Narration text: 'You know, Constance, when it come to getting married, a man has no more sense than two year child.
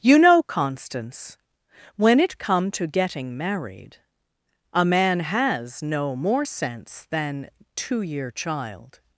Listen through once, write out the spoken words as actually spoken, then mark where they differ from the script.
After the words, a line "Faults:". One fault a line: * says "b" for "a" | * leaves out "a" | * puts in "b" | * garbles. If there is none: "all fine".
'You know, Constance, when it come to getting married, a man has no more sense than two year child.
Faults:
all fine